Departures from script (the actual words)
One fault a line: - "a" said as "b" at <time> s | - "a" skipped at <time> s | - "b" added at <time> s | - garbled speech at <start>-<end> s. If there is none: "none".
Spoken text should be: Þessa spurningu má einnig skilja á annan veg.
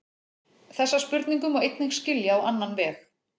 none